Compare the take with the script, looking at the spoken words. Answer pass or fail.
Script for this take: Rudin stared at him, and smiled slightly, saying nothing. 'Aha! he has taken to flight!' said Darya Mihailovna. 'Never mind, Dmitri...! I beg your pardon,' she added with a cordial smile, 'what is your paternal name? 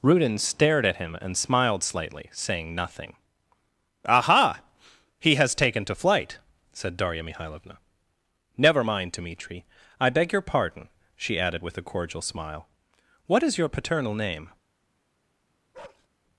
pass